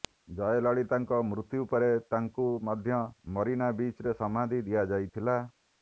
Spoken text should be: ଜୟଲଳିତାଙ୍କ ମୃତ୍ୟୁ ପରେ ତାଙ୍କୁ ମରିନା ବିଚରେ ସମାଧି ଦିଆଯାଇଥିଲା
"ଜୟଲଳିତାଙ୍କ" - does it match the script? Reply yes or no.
yes